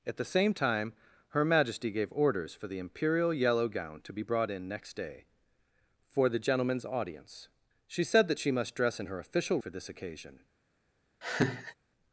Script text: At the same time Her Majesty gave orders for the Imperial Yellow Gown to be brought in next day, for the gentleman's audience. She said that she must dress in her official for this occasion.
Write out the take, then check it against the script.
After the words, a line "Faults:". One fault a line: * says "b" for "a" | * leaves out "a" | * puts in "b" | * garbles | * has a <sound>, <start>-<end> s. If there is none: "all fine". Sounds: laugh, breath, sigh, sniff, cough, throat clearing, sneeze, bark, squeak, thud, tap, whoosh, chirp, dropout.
At the same time Her Majesty gave orders for the Imperial Yellow Gown to be brought in next day, for the gentleman's audience. She said that she must dress in her official for this occasion.
Faults:
* has a laugh, 11.2-11.7 s